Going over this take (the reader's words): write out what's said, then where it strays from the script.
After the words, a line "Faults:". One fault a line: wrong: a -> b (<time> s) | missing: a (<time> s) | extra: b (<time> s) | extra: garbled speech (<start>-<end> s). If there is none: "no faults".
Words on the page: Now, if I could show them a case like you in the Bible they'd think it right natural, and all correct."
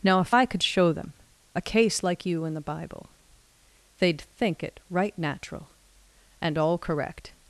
Now, if I could show them a case like you in the Bible they'd think it right natural, and all correct."
Faults:
no faults